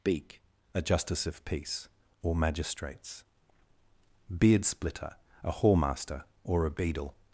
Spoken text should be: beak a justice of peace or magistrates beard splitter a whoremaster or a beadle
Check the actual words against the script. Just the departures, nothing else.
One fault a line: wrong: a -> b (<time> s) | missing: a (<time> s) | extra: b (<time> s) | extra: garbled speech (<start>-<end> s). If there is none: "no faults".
no faults